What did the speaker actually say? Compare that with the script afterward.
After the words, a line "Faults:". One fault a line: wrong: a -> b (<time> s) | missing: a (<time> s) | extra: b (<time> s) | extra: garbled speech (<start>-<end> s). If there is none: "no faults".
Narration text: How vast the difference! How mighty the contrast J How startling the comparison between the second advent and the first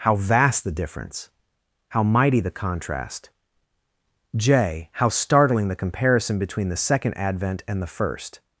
How vast the difference! How mighty the contrast J How startling the comparison between the second advent and the first
Faults:
no faults